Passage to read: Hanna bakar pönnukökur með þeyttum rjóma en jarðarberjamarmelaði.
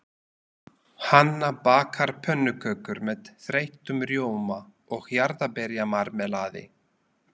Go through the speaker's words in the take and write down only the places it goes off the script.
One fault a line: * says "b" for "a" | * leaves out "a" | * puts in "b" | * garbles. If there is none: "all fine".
* says "og" for "en"